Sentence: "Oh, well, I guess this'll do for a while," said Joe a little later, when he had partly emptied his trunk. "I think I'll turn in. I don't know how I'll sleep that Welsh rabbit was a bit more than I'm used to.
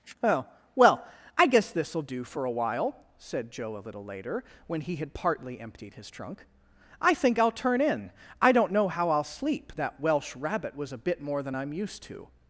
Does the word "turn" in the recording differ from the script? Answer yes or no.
no